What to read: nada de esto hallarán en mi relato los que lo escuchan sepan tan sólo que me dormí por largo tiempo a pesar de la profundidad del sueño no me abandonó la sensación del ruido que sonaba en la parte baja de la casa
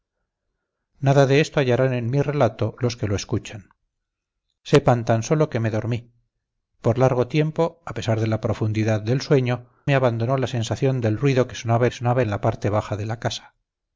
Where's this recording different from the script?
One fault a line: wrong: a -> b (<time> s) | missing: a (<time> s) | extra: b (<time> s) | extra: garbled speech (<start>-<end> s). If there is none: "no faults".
missing: no (9.7 s)
extra: sonaba (11.9 s)